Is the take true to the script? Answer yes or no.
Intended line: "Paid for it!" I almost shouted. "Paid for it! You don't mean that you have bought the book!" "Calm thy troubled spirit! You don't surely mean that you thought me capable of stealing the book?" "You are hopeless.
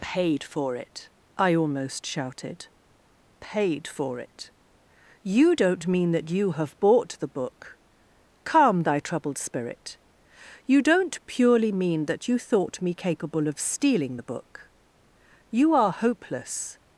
no